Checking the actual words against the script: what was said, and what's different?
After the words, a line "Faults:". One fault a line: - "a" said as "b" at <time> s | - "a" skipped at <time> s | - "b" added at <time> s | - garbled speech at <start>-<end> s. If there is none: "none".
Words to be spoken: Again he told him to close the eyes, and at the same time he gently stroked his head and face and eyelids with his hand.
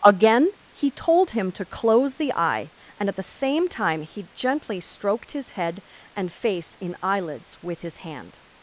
Again he told him to close the eye, and at the same time he gently stroked his head and face in eyelids with his hand.
Faults:
- "eyes" said as "eye" at 2.3 s
- "and" said as "in" at 6.8 s